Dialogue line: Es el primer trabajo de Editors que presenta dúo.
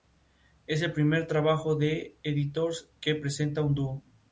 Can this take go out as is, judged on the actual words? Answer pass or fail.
fail